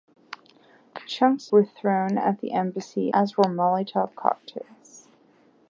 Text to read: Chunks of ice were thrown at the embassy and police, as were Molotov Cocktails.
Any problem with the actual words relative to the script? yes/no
yes